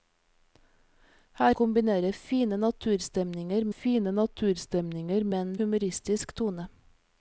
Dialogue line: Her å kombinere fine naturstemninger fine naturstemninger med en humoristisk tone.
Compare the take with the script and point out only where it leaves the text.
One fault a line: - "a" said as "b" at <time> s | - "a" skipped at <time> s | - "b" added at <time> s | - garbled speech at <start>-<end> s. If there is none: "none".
none